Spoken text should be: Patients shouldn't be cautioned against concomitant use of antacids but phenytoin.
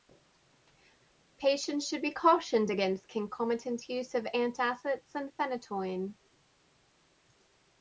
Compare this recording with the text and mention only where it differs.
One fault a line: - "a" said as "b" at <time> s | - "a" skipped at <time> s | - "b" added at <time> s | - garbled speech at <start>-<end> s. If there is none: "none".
- "shouldn't" said as "should" at 1.9 s
- "but" said as "and" at 5.2 s